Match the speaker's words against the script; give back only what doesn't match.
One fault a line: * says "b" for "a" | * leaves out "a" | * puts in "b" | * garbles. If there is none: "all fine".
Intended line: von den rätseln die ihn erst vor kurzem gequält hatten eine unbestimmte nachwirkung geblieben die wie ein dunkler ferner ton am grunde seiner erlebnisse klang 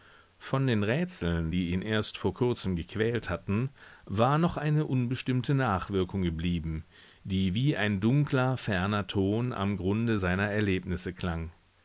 * puts in "war noch"